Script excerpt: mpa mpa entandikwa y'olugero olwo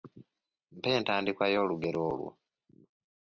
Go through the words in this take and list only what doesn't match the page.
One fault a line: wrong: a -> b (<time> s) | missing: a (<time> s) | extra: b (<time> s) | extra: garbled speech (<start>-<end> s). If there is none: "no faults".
missing: mpa (0.9 s)